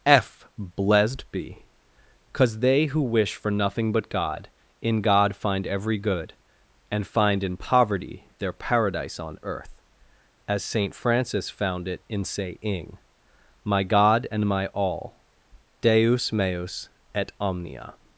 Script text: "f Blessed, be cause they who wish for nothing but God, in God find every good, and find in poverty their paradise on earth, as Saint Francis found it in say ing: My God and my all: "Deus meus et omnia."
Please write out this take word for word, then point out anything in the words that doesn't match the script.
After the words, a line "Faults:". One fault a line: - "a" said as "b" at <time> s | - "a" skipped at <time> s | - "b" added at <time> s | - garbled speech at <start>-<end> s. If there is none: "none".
"f Blessed, be cause they who wish for nothing but God, in God find every good, and find in poverty their paradise on earth, as Saint Francis found it in say ing: My God and my all: "Deus meus et omnia."
Faults:
none